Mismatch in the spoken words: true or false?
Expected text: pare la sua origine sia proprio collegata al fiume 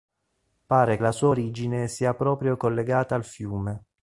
false